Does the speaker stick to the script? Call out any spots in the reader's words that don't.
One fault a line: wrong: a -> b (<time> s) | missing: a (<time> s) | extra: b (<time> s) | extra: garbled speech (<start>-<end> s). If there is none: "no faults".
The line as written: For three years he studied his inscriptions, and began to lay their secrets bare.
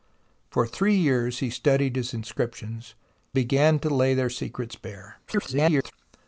missing: and (3.0 s)
extra: garbled speech (5.3-5.9 s)